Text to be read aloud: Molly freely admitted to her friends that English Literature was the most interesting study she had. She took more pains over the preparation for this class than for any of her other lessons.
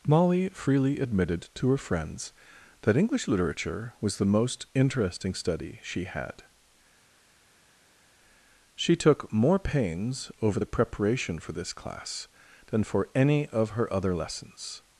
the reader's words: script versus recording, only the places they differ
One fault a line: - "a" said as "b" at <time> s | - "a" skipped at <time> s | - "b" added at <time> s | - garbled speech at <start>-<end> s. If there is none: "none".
none